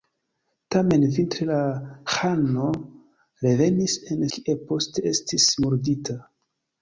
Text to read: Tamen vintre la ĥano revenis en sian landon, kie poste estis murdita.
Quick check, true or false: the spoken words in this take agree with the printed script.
false